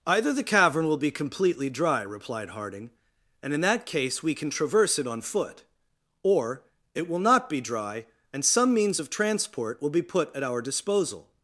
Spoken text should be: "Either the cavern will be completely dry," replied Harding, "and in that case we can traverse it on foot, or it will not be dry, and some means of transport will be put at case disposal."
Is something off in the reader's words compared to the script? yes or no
yes